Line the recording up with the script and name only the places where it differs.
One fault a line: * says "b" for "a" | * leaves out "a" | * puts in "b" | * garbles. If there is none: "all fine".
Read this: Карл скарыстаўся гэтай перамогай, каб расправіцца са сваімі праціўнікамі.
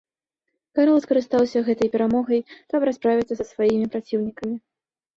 all fine